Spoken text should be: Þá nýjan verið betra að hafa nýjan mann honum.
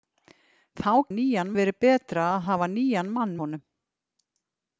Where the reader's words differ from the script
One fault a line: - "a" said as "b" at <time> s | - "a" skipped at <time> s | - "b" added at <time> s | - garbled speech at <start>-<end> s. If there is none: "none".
none